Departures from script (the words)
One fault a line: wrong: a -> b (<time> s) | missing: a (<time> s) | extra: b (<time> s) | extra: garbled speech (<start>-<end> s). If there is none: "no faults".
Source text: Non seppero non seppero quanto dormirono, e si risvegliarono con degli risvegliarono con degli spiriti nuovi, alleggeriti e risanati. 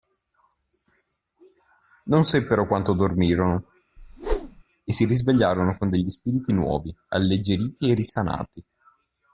missing: non seppero (2.6 s)
missing: risvegliarono con degli (6.1 s)